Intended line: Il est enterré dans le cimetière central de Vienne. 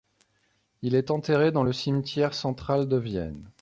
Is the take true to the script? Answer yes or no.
yes